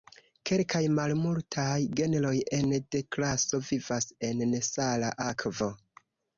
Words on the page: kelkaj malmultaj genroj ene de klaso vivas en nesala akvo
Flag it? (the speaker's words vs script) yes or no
no